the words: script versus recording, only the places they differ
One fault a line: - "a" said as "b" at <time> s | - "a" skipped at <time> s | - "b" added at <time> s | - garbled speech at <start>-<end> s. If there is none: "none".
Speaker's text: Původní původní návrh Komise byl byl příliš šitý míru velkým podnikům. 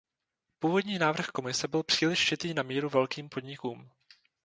- "původní" skipped at 1.0 s
- "byl" skipped at 1.8 s
- "na" added at 2.5 s